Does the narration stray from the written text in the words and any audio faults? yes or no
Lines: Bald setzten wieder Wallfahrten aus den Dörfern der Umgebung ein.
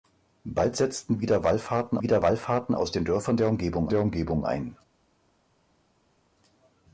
yes